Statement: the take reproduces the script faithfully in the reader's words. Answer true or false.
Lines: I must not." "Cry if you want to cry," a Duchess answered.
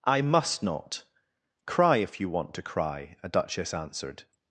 true